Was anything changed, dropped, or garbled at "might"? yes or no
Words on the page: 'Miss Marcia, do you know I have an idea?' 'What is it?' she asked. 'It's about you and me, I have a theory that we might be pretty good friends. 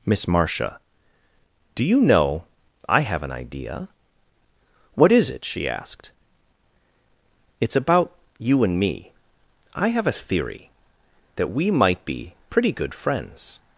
no